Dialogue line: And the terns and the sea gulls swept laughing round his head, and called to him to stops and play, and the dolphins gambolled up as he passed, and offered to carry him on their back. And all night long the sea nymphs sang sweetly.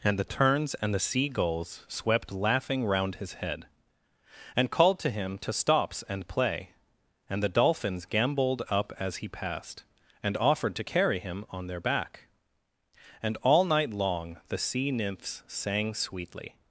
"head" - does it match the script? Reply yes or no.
yes